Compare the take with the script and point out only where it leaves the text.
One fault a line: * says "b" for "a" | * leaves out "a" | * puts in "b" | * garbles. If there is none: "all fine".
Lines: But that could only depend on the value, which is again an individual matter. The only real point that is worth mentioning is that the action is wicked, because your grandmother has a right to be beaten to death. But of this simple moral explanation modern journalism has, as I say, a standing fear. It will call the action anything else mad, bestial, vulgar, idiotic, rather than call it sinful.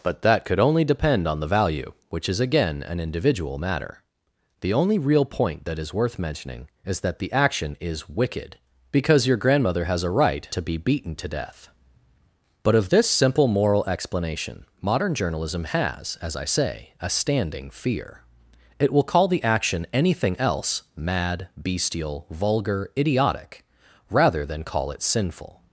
all fine